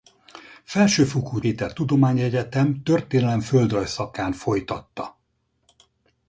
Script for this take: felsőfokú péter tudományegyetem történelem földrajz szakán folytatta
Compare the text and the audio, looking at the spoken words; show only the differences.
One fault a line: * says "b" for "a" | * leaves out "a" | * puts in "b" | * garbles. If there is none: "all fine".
all fine